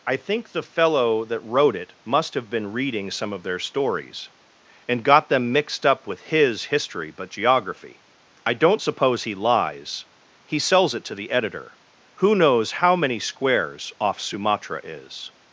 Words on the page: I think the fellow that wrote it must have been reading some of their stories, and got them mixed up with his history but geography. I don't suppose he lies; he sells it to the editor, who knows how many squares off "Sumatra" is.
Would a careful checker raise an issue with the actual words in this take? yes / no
no